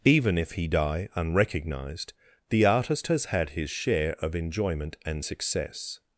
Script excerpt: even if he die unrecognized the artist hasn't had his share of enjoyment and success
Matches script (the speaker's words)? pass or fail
fail